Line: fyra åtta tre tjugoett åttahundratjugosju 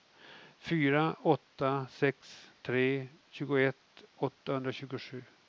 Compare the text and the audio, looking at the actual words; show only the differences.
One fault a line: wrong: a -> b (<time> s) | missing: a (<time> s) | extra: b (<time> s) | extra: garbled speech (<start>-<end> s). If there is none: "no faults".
extra: sex (1.9 s)